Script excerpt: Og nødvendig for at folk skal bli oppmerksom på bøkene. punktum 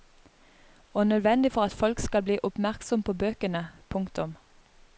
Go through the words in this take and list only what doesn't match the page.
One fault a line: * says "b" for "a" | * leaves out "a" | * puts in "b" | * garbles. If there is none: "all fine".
all fine